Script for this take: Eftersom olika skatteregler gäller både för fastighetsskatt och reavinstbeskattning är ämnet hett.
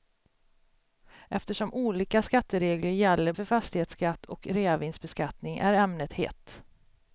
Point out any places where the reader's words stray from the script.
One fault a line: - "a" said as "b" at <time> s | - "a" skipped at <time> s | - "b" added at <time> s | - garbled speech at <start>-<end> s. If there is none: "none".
- "både" skipped at 3.3 s